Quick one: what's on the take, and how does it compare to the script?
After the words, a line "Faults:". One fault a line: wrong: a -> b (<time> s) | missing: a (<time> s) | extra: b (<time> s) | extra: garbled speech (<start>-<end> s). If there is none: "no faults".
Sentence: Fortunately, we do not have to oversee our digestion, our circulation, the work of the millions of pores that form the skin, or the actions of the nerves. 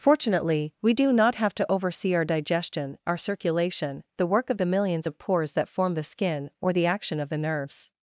Fortunately, we do not have to oversee our digestion, our circulation, the work of the millions of pores that form the skin, or the action of the nerves.
Faults:
wrong: actions -> action (6.9 s)